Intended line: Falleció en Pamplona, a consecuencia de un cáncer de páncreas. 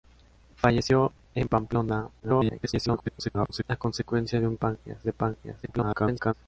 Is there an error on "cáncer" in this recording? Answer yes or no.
yes